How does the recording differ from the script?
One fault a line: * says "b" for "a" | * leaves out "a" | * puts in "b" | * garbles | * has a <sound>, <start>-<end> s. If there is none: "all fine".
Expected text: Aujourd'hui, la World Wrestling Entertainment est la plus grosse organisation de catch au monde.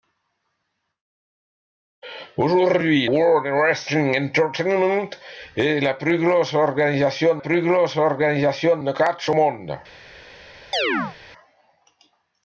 * leaves out "la"
* puts in "plus grosse organisation"
* has a chirp, 10.7-11.2 s